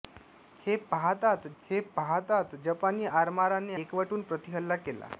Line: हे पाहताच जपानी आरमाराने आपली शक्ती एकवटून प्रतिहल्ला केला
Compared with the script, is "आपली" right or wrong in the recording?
wrong